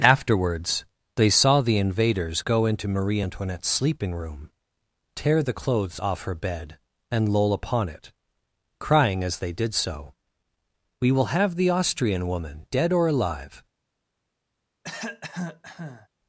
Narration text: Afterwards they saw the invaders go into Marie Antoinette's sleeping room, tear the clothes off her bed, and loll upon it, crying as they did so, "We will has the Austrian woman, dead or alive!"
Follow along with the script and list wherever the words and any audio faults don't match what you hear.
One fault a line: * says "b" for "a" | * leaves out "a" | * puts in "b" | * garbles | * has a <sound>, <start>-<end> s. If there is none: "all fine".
* says "have" for "has"
* has a cough, 14.8-16.1 s